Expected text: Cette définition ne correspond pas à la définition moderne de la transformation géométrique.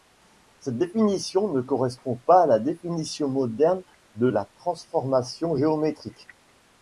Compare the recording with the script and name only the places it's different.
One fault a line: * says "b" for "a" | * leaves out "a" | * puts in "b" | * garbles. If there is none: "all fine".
all fine